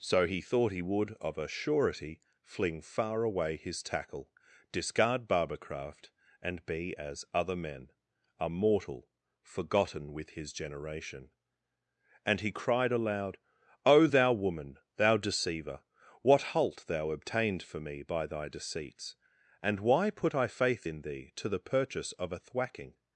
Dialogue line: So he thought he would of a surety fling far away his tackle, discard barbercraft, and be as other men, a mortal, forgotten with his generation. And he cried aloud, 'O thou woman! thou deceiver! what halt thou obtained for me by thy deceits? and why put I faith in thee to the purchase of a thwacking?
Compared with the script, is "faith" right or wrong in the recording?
right